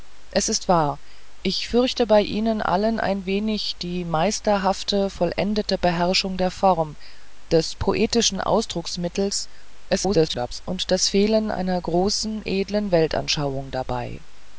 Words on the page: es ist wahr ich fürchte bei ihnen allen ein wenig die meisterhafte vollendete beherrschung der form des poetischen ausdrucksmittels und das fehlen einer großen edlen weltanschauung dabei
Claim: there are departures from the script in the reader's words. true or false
true